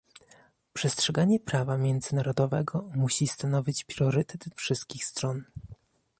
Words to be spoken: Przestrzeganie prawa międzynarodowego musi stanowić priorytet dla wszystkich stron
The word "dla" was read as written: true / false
false